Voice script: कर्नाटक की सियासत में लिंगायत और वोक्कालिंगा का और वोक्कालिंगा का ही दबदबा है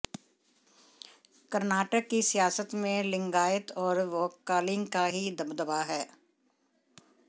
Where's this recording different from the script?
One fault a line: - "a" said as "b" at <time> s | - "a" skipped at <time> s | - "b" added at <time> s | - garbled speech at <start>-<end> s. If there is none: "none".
- "और वोक्कालिंगा का" skipped at 5.0 s